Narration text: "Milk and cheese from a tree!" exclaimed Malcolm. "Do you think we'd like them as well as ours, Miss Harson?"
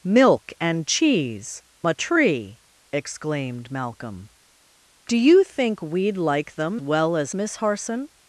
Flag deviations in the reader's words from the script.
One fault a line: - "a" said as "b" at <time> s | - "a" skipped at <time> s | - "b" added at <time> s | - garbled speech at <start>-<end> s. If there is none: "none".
- "from" skipped at 1.6 s
- "as" skipped at 6.8 s
- "ours" skipped at 7.3 s